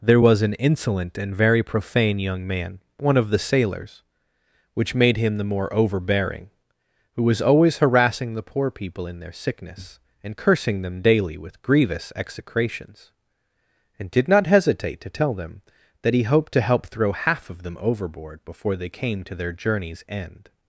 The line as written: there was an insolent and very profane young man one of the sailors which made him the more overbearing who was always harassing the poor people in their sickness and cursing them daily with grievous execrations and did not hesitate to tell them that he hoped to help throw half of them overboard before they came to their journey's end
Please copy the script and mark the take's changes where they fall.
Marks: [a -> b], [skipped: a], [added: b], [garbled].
there was an insolent and very profane young man one of the sailors which made him the more overbearing who was always harassing the poor people in their sickness and cursing them daily with grievous execrations and did not hesitate to tell them that he hoped to help throw half of them overboard before they came to their journey's end